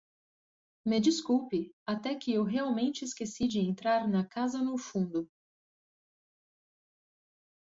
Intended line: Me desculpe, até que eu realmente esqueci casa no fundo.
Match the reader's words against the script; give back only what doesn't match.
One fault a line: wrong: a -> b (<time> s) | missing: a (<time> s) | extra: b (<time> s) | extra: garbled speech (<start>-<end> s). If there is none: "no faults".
extra: de entrar na (3.5 s)